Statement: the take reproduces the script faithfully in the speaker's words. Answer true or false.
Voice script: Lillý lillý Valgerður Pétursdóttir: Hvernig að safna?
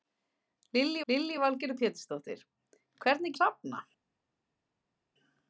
true